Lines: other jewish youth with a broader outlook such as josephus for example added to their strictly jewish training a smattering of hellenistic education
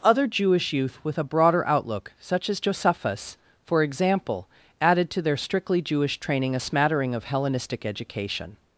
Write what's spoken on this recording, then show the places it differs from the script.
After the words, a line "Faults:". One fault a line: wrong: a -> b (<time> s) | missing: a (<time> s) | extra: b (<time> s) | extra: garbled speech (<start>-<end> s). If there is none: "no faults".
other jewish youth with a broader outlook such as josephus for example added to their strictly jewish training a smattering of hellenistic education
Faults:
no faults